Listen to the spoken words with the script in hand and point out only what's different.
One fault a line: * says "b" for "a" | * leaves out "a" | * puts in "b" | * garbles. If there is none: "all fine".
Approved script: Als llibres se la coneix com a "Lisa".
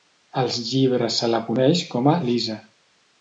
all fine